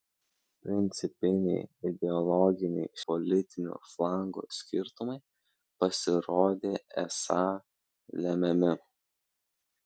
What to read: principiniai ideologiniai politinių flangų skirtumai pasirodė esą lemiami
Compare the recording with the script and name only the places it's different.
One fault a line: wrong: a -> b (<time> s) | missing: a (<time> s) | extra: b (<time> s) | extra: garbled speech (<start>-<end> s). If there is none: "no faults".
no faults